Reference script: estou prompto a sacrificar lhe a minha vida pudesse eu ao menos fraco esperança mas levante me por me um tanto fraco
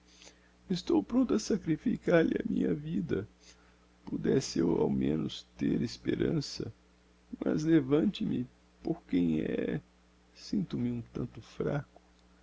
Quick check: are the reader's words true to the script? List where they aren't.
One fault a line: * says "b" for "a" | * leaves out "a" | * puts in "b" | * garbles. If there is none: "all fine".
* says "ter" for "fraco"
* puts in "quem é sinto"